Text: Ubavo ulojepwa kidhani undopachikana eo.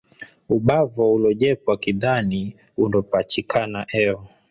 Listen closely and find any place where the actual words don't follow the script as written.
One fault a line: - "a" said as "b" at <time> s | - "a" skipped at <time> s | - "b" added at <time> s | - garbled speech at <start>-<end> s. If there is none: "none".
none